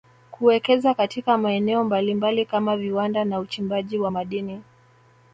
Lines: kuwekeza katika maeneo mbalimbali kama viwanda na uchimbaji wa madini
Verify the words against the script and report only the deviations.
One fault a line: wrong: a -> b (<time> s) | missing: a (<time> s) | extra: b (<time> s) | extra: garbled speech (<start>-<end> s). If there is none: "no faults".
no faults